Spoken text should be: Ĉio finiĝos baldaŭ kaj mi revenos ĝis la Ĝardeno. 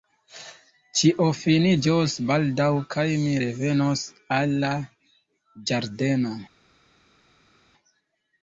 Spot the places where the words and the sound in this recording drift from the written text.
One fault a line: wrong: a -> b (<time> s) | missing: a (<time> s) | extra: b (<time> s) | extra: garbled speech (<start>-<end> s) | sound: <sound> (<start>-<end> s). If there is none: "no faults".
wrong: ĝis -> al (4.4 s)